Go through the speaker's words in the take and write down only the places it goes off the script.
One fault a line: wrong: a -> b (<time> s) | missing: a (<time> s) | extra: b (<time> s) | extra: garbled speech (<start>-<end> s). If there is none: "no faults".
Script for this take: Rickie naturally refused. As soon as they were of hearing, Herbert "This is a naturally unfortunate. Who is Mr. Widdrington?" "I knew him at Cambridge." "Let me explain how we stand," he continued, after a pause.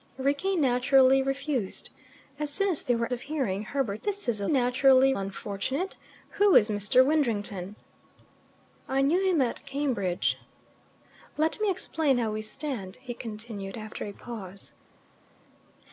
no faults